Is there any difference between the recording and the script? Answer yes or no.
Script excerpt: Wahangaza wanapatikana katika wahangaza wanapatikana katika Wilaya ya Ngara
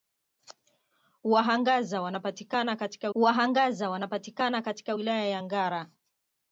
no